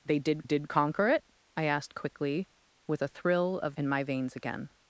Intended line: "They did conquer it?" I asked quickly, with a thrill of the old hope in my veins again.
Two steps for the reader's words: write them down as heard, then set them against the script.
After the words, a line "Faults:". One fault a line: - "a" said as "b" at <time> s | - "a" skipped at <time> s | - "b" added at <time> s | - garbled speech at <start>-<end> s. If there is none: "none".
"They did did conquer it?" I asked quickly, with a thrill of in my veins again.
Faults:
- "did" added at 0.4 s
- "the old hope" skipped at 3.7 s